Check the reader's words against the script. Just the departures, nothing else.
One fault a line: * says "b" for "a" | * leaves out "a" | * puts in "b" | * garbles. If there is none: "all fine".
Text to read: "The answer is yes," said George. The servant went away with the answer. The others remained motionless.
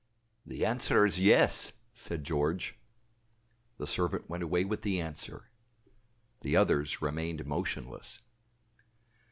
all fine